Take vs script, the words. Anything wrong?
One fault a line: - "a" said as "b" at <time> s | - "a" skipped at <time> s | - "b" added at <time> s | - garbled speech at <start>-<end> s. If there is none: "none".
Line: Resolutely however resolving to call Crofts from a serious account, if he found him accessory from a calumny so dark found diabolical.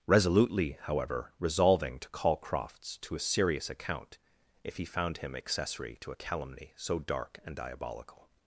- "from" said as "to" at 3.0 s
- "from" said as "to" at 6.0 s
- "found" said as "and" at 7.4 s